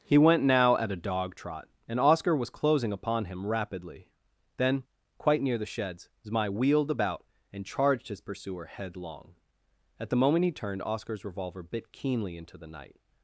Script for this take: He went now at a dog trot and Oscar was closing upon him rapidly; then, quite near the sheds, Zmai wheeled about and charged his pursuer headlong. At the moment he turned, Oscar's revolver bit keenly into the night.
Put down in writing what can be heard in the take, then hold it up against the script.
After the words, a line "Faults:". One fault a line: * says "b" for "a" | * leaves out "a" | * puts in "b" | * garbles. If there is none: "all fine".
He went now at a dog trot and Oscar was closing upon him rapidly; then, quite near the sheds, Zmai wheeled about and charged his pursuer headlong. At the moment he turned, Oscar's revolver bit keenly into the night.
Faults:
all fine